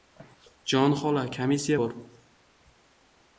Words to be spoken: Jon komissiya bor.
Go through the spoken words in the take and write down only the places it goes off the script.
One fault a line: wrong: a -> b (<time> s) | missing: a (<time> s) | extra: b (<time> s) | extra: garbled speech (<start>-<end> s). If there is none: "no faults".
extra: xola (1.0 s)